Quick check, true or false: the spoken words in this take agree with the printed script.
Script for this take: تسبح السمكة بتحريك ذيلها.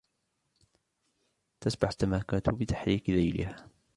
true